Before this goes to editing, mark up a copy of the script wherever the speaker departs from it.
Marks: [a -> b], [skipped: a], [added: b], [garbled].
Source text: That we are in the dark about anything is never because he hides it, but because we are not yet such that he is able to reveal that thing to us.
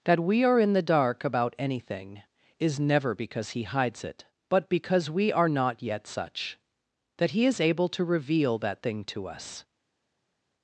That we are in the dark about anything is never because he hides it, but because we are not yet such that he is able to reveal that thing to us.